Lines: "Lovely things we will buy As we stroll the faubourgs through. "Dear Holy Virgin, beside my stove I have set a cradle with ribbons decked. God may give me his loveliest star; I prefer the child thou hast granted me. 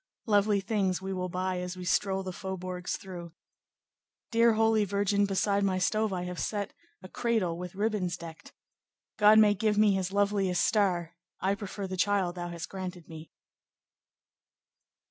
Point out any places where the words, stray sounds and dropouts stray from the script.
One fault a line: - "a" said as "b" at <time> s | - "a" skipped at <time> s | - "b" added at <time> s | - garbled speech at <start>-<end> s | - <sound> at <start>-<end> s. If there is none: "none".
none